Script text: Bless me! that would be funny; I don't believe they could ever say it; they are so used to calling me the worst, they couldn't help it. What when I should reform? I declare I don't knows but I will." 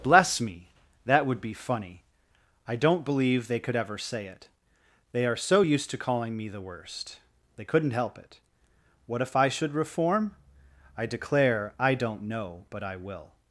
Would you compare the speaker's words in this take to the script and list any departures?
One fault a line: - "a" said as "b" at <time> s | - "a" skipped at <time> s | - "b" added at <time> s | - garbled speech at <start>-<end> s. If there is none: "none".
- "when" said as "if" at 9.2 s
- "knows" said as "know" at 12.2 s